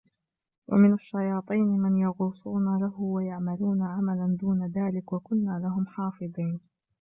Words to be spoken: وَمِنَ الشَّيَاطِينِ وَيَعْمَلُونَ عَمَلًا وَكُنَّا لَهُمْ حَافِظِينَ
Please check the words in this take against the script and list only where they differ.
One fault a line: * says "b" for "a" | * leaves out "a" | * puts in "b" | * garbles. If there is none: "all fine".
* puts in "مَنْ يَغُوصُونَ لَهُ"
* puts in "دُونَ ذَلِكَ"